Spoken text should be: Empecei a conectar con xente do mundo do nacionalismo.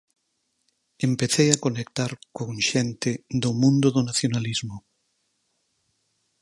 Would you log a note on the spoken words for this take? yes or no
no